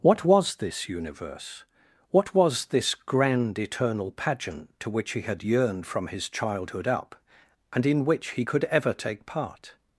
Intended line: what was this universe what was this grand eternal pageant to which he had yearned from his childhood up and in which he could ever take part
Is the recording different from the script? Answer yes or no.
no